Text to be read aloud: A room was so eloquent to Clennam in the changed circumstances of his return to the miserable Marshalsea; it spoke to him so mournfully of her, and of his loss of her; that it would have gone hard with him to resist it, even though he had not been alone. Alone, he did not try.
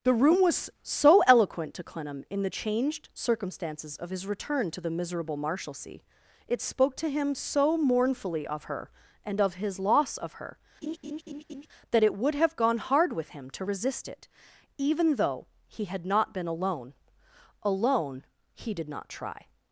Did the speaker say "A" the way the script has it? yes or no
no